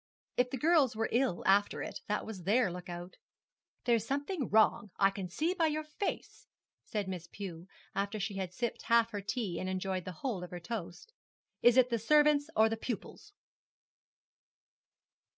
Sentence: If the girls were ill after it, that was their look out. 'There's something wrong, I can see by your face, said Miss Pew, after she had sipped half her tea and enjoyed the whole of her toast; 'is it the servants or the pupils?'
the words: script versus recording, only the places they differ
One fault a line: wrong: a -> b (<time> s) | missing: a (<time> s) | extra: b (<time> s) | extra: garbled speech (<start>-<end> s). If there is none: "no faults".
no faults